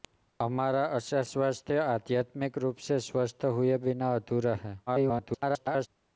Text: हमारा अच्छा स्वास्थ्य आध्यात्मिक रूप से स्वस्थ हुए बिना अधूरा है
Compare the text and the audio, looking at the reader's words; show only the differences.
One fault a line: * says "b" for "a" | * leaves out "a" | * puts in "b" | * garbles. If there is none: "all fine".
* garbles